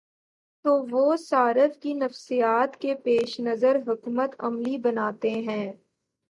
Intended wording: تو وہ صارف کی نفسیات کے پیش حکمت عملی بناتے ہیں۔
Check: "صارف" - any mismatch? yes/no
no